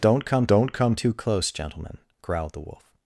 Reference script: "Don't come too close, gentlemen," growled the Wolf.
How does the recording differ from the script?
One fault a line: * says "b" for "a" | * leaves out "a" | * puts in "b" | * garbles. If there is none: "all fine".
* puts in "don't come"